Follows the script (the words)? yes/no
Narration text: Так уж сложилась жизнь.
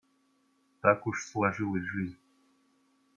yes